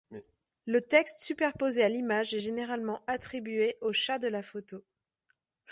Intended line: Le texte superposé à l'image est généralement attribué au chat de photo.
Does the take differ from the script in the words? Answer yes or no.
yes